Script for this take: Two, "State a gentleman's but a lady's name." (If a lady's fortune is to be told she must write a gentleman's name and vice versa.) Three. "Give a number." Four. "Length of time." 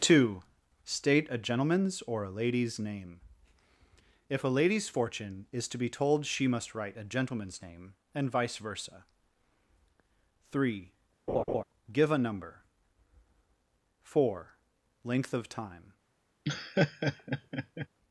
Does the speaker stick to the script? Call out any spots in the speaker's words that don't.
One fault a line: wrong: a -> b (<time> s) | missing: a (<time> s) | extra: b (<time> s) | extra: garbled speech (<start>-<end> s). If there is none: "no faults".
wrong: but -> or (2.0 s)